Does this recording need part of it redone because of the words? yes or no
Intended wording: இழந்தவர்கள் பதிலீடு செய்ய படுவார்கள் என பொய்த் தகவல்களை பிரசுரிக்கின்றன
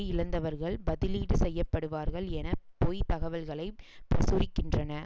no